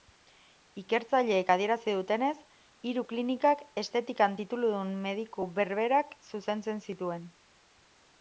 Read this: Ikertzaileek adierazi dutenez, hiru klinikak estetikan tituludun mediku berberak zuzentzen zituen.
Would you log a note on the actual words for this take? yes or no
no